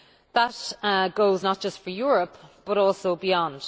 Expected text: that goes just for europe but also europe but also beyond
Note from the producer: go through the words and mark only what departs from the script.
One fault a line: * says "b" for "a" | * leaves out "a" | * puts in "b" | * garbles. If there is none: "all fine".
* puts in "not"
* leaves out "europe but also"